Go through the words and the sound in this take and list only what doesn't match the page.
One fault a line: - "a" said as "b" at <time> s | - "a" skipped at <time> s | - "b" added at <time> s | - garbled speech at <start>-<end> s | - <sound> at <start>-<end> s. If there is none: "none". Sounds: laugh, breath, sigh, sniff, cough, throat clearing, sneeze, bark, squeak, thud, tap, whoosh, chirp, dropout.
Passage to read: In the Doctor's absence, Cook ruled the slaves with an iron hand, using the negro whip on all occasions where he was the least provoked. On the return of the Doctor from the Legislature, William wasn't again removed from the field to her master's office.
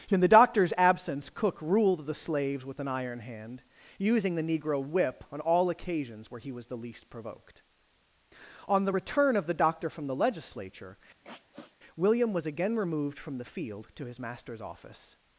- sniff at 11.2-11.8 s
- "wasn't" said as "was" at 12.3 s
- "her" said as "his" at 14.0 s